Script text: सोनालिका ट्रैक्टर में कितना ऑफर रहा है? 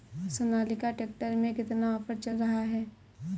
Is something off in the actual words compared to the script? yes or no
yes